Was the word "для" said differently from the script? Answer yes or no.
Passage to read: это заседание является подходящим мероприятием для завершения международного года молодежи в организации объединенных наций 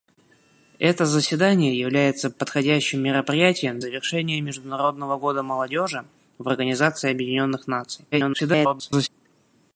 yes